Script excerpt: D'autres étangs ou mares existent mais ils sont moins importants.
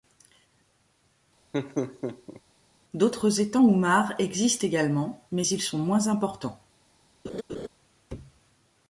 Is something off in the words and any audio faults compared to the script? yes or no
yes